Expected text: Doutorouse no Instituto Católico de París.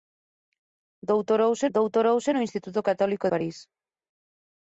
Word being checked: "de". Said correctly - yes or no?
no